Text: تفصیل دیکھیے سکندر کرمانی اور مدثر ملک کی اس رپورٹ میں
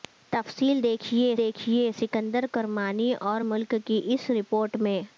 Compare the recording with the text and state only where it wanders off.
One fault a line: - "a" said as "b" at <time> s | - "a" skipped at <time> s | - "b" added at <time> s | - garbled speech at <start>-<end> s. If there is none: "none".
- "دیکھیے" added at 1.4 s
- "مدثر" skipped at 3.4 s